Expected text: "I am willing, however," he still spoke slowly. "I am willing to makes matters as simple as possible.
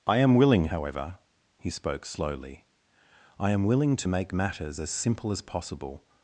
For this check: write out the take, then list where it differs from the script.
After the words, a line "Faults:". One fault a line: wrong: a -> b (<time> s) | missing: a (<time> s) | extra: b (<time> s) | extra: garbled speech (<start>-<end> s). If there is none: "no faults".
"I am willing, however," he spoke slowly. "I am willing to make matters as simple as possible.
Faults:
missing: still (1.7 s)
wrong: makes -> make (4.1 s)